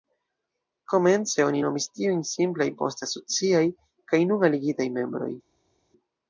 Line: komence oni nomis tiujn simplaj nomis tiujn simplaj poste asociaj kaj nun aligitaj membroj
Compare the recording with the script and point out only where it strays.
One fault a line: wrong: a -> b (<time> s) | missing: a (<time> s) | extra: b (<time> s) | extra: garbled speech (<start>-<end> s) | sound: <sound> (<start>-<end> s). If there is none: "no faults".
missing: nomis tiujn simplaj (2.7 s)